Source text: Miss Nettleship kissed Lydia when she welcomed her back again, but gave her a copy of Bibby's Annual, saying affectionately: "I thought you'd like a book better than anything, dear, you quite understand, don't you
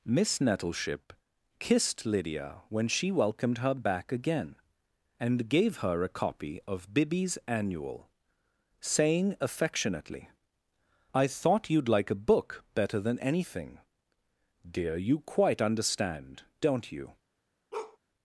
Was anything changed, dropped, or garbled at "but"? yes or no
yes